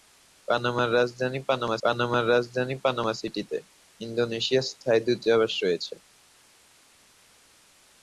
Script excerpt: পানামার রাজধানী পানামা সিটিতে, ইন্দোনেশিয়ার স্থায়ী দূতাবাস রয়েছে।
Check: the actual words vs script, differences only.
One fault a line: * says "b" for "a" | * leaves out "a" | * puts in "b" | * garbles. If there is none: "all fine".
* puts in "পানামার রাজধানী পানামা"